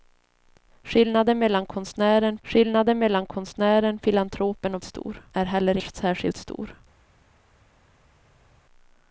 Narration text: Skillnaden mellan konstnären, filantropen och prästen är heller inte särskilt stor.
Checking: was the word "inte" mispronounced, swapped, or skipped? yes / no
yes